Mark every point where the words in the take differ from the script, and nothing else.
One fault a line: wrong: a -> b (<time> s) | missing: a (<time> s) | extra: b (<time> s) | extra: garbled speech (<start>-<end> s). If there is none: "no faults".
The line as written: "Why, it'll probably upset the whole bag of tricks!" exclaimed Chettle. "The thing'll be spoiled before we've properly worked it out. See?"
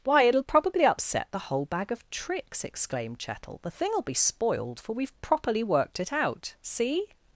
wrong: before -> for (4.8 s)